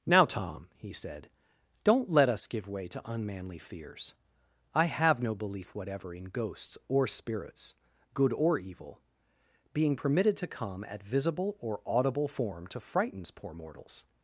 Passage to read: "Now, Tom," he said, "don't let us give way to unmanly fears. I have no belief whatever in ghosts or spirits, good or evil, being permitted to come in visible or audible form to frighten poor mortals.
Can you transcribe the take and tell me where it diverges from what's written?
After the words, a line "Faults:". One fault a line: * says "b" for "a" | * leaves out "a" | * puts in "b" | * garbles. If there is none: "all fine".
"Now, Tom," he said, "don't let us give way to unmanly fears. I have no belief whatever in ghosts or spirits, good or evil, being permitted to come at visible or audible form to frightens poor mortals.
Faults:
* says "at" for "in"
* says "frightens" for "frighten"